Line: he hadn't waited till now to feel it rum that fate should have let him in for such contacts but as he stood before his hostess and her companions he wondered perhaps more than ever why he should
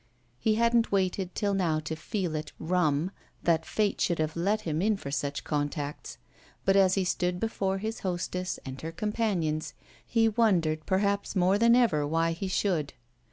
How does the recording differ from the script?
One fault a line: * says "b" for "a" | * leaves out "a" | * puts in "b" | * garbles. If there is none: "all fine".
all fine